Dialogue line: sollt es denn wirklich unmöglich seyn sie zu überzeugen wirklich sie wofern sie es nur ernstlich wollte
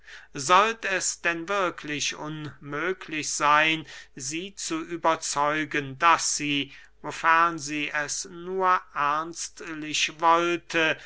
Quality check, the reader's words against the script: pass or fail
fail